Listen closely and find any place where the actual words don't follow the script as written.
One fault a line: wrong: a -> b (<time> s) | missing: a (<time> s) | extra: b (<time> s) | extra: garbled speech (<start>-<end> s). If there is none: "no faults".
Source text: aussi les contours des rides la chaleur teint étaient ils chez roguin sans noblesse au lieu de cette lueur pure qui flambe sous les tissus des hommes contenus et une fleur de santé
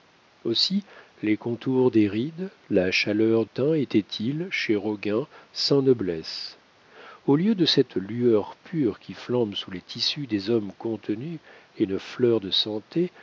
no faults